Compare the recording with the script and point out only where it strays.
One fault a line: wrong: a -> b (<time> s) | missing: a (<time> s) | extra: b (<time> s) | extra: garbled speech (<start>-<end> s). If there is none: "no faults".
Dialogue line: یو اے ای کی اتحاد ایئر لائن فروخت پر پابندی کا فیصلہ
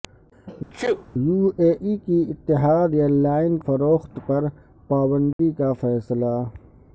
no faults